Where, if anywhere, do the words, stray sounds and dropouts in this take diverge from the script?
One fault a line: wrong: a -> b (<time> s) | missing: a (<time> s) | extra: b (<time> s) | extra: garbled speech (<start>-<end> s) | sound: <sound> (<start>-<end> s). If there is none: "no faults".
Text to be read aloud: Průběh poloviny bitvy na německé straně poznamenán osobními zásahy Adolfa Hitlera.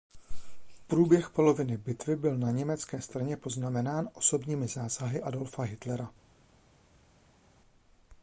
extra: byl (2.1 s)